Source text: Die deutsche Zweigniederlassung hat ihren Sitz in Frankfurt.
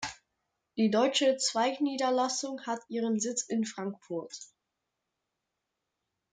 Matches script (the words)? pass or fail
pass